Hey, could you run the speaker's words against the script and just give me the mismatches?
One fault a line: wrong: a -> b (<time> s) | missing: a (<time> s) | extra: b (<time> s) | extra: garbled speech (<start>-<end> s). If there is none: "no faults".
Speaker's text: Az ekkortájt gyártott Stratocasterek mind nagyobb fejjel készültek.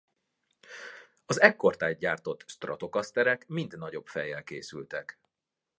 no faults